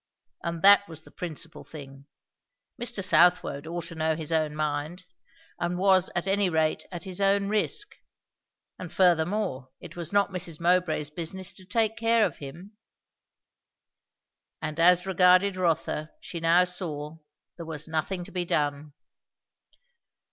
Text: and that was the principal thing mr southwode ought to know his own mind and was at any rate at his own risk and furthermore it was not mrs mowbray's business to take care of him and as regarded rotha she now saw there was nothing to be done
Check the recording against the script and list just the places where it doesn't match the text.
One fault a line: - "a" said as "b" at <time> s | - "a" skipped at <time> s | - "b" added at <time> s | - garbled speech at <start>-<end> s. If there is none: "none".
none